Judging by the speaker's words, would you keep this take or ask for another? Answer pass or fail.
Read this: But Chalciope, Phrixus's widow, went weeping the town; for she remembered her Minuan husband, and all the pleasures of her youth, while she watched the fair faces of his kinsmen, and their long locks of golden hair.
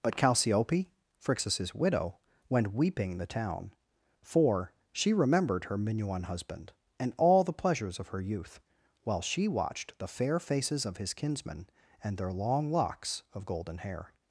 pass